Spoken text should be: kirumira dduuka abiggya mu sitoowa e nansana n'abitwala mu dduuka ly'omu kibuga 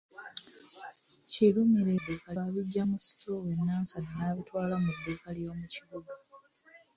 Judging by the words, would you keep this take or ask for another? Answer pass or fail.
pass